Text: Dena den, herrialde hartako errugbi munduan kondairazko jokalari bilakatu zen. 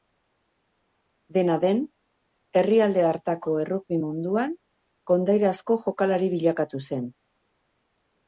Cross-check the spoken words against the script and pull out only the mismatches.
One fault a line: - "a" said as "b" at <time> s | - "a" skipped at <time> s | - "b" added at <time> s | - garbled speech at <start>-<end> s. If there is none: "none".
none